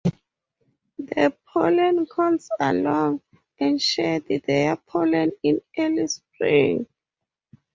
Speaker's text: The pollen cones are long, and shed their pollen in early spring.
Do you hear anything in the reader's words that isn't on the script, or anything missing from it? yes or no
no